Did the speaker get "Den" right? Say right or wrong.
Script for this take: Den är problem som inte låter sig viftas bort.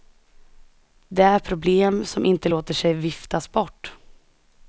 wrong